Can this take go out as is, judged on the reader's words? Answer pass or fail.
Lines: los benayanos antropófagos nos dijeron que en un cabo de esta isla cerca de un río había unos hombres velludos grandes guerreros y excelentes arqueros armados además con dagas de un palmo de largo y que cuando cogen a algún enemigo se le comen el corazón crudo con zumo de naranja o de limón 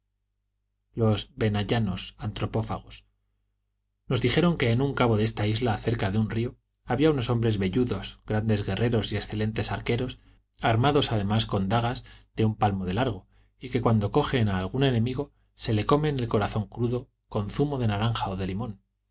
pass